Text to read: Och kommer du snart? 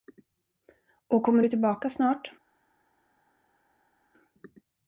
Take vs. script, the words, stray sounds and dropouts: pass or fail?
fail